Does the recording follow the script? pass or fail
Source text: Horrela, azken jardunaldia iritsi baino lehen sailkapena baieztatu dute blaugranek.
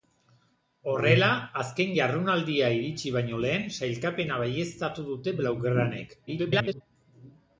fail